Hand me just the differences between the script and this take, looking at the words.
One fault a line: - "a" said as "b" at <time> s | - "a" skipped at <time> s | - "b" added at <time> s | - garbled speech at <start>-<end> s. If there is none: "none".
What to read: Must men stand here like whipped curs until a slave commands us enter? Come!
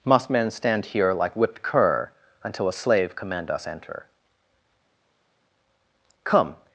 - "curs" said as "cur" at 1.6 s
- "commands" said as "command" at 3.2 s